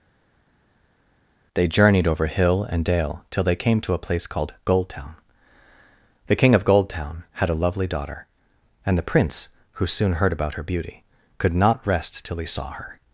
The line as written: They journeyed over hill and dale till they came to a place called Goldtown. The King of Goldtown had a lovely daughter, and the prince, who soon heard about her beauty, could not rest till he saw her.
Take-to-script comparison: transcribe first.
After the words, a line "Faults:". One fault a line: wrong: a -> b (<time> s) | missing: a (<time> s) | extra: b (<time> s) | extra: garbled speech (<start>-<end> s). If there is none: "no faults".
They journeyed over hill and dale till they came to a place called Goldtown. The King of Goldtown had a lovely daughter, and the prince, who soon heard about her beauty, could not rest till he saw her.
Faults:
no faults